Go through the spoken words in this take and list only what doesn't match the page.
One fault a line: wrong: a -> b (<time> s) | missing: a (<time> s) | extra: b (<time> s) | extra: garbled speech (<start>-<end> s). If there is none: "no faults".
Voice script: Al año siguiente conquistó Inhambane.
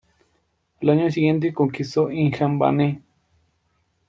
no faults